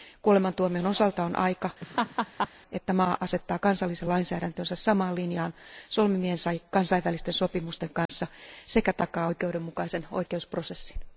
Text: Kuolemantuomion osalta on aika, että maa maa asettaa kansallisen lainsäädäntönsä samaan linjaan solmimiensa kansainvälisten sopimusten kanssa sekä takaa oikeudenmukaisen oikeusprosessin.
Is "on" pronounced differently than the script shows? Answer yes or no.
no